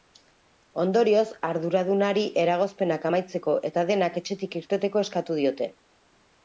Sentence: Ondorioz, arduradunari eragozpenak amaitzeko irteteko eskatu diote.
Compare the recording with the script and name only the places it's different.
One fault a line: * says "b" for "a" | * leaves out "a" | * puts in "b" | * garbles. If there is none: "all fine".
* puts in "eta denak etxetik"